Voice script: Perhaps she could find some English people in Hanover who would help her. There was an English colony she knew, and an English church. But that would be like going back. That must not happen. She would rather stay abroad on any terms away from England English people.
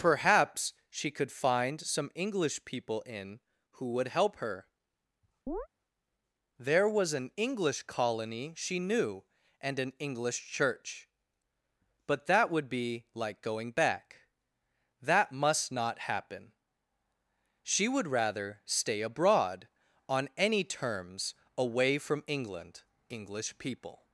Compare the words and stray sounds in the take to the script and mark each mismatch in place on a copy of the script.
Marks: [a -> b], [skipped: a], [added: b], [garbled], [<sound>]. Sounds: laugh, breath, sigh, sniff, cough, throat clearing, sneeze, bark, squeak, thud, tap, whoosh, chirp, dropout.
Perhaps she could find some English people in [skipped: Hanover] who would help her. [chirp] There was an English colony she knew, and an English church. But that would be like going back. That must not happen. She would rather stay abroad on any terms away from England English people.